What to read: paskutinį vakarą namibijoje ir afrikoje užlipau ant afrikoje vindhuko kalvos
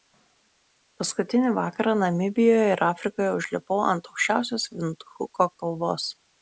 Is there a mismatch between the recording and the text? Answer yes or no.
yes